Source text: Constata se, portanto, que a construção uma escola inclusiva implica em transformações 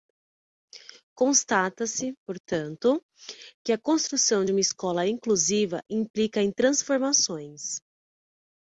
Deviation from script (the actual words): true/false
false